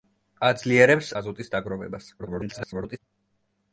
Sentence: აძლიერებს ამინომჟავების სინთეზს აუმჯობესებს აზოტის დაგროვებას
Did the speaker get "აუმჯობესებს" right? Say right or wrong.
wrong